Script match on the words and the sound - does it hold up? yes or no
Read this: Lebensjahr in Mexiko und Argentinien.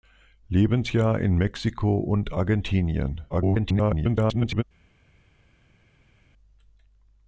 no